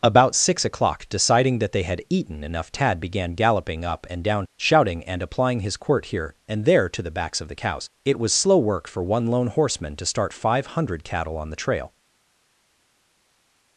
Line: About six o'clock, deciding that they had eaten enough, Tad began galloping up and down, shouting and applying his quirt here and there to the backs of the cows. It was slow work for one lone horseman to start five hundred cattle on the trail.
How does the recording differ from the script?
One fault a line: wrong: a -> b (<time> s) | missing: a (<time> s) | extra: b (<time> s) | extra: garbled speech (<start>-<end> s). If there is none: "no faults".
no faults